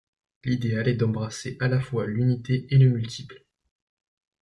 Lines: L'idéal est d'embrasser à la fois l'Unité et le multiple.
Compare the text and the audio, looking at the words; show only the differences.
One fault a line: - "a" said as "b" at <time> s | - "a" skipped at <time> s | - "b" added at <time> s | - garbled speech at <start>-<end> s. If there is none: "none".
none